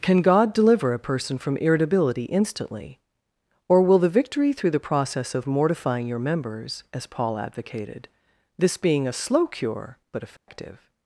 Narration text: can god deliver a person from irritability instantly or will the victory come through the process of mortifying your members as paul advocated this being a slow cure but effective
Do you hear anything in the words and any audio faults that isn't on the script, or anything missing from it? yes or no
yes